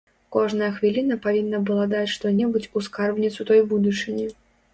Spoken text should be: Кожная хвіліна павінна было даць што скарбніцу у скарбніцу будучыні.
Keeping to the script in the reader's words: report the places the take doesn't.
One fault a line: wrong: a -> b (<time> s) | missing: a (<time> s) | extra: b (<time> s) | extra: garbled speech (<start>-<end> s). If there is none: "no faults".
wrong: было -> была (1.7 s)
wrong: скарбніцу -> небудзь (2.4 s)
extra: той (3.5 s)